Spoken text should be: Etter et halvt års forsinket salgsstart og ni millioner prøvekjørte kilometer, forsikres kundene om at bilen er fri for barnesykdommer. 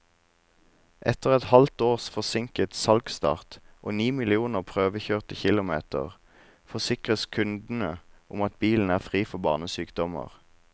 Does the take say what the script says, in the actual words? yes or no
yes